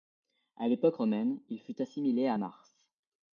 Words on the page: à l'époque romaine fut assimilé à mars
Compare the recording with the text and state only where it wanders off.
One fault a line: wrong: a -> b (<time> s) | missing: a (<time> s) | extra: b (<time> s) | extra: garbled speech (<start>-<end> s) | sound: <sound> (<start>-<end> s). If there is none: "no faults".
extra: il (1.5 s)